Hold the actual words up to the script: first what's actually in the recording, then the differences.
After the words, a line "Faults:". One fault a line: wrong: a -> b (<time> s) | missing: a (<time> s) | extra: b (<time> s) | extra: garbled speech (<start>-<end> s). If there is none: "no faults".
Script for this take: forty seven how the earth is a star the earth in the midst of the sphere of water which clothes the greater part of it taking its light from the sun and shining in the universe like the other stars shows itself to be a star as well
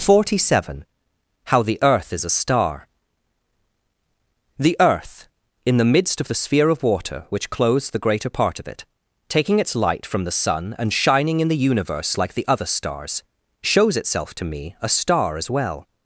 forty seven how the earth is a star the earth in the midst of the sphere of water which clothes the greater part of it taking its light from the sun and shining in the universe like the other stars shows itself to me a star as well
Faults:
wrong: be -> me (14.4 s)